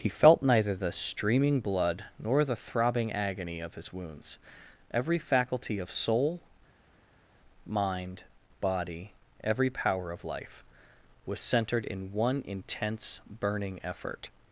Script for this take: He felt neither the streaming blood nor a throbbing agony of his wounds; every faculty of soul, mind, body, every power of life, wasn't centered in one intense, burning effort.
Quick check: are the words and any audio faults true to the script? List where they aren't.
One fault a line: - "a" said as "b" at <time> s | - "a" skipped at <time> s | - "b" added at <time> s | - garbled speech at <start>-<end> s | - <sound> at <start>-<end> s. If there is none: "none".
- "a" said as "the" at 2.4 s
- "wasn't" said as "was" at 11.3 s